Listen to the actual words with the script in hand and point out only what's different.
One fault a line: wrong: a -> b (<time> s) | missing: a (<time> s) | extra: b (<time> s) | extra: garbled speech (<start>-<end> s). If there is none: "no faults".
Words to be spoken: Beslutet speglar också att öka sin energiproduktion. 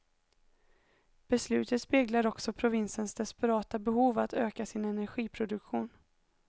extra: provinsens desperata behov (2.5 s)